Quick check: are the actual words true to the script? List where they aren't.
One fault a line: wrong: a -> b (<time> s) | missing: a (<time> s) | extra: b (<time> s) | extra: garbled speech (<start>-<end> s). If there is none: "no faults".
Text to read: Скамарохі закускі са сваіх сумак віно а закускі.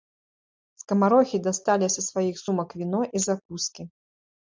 wrong: закускі -> дасталі (1.5 s)
wrong: а -> і (3.2 s)